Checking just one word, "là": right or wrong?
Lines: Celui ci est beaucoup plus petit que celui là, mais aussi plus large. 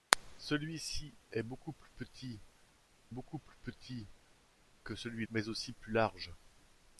wrong